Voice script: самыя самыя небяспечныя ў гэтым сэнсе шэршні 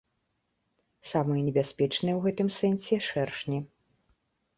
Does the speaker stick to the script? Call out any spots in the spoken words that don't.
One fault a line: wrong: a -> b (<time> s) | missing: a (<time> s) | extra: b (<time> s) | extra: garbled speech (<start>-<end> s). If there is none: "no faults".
missing: самыя (1.4 s)